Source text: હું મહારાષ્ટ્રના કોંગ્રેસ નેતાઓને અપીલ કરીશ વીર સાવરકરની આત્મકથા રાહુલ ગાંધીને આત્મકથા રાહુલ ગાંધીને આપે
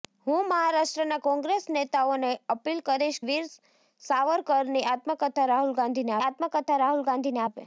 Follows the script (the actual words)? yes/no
yes